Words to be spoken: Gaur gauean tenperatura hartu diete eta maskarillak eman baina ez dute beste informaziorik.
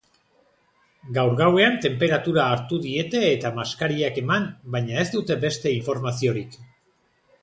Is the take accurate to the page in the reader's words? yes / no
yes